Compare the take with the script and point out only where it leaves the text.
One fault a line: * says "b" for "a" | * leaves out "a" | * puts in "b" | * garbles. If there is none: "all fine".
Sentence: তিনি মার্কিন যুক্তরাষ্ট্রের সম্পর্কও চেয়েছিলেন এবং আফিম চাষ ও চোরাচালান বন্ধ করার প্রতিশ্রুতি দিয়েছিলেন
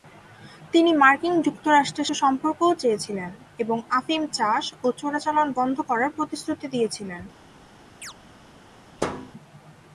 all fine